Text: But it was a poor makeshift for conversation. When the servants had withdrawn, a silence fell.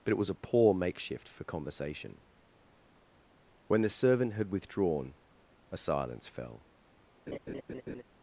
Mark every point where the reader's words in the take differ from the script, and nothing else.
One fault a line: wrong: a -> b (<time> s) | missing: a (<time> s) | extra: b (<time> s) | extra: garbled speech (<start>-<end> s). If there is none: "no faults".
wrong: servants -> servant (3.9 s)